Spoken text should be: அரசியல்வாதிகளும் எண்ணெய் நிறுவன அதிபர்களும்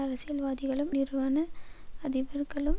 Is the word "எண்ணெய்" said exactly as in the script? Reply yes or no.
no